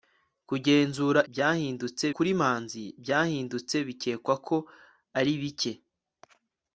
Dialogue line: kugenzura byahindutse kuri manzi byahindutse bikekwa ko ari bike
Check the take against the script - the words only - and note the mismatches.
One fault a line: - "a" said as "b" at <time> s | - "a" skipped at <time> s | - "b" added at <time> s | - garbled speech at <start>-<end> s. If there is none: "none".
none